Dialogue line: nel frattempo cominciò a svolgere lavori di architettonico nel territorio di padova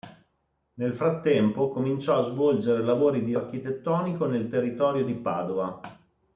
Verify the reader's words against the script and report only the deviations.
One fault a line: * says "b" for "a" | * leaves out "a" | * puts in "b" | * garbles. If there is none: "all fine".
all fine